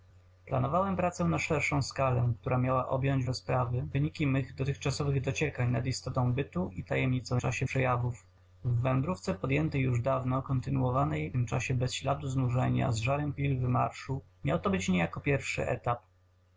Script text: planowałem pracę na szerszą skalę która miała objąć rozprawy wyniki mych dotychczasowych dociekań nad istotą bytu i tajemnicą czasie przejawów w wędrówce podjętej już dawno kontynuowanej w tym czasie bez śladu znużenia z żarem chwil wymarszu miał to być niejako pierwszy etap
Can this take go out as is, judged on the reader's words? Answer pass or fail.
pass